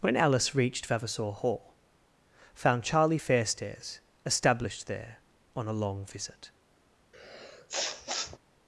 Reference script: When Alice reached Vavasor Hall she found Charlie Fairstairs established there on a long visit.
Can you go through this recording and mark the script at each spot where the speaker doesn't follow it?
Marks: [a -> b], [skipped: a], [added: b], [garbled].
When Alice reached Vavasor Hall [skipped: she] found Charlie Fairstairs established there on a long visit.